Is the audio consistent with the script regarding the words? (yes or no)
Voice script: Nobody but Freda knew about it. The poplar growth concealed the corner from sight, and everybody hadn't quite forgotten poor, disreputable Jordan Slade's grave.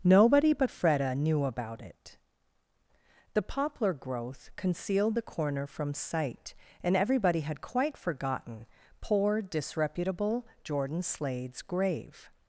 no